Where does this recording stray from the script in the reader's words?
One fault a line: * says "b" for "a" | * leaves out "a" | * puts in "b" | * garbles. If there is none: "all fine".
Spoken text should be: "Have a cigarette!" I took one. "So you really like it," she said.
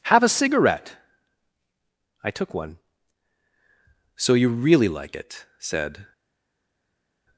* leaves out "she"